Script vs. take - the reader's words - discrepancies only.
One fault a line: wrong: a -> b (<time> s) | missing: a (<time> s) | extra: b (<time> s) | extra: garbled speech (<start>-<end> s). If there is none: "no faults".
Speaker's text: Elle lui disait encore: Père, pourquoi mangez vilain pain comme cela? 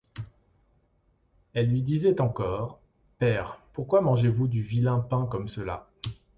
extra: vous du (4.3 s)